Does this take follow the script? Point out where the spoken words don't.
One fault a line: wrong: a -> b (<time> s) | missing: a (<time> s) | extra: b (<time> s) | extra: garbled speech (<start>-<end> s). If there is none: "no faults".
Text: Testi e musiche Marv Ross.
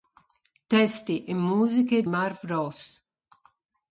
no faults